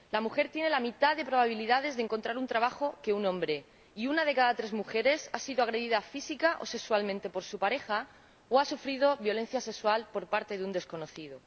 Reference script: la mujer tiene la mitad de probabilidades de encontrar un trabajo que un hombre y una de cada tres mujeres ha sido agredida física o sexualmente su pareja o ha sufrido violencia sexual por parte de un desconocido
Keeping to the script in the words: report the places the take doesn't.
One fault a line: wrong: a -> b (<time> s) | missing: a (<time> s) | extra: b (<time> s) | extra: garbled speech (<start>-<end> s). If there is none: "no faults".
extra: por (7.3 s)